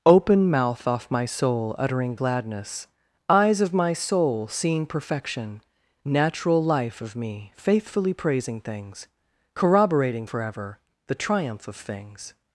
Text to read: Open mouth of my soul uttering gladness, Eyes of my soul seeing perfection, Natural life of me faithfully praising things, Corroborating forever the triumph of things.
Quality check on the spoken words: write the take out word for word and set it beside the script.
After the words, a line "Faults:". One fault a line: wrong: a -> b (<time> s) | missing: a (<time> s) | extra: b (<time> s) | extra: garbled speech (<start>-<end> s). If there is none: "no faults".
Open mouth off my soul uttering gladness, Eyes of my soul seeing perfection, Natural life of me faithfully praising things, Corroborating forever the triumph of things.
Faults:
wrong: of -> off (0.9 s)